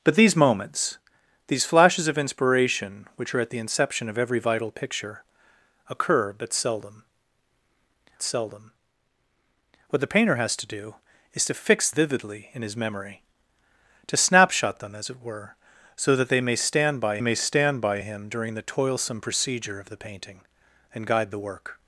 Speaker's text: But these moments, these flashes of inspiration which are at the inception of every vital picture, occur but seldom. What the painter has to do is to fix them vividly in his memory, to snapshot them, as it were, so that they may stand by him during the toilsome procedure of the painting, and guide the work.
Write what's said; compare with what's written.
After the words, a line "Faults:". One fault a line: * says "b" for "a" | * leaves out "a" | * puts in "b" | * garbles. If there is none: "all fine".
But these moments, these flashes of inspiration which are at the inception of every vital picture, occur but seldom seldom. What the painter has to do is to fix vividly in his memory, to snapshot them, as it were, so that they may stand by may stand by him during the toilsome procedure of the painting, and guide the work.
Faults:
* puts in "seldom"
* leaves out "them"
* puts in "may stand by"